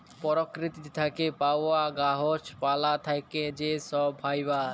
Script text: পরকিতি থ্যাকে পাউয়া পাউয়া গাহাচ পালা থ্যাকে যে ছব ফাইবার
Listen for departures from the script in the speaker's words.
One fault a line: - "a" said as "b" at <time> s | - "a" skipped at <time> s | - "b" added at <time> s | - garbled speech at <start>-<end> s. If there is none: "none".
- "পাউয়া" skipped at 1.8 s